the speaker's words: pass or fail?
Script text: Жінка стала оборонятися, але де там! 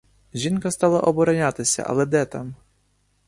pass